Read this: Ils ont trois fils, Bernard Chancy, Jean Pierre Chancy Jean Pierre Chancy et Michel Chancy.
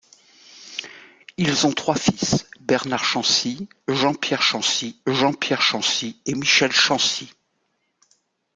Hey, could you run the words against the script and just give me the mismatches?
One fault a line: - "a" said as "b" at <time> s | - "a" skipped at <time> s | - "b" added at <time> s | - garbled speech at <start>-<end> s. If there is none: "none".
none